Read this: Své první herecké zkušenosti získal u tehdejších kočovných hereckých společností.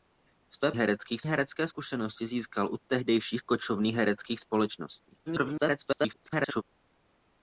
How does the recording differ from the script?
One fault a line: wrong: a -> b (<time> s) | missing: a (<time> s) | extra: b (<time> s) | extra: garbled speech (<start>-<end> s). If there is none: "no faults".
wrong: první -> hereckých (0.8 s)
extra: garbled speech (5.3-6.6 s)